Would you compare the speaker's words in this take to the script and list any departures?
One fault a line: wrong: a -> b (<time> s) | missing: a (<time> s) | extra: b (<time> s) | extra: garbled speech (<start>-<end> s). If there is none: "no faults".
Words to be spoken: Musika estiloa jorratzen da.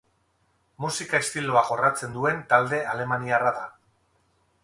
extra: duen talde alemaniarra (2.2 s)